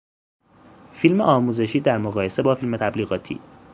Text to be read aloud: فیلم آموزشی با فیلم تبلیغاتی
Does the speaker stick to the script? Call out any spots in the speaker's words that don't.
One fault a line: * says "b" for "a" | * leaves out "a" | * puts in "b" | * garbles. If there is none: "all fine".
* puts in "در مقایسه"